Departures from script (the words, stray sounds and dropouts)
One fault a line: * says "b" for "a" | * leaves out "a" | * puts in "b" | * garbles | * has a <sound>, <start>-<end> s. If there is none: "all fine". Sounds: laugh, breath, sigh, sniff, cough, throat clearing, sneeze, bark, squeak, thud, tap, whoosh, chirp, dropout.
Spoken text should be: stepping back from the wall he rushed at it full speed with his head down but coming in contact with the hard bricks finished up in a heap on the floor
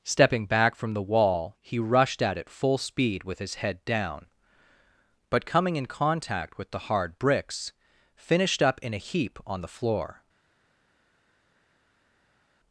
all fine